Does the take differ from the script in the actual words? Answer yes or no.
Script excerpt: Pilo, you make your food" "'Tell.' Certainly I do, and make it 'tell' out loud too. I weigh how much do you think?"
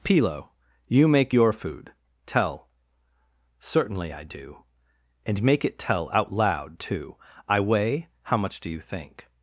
no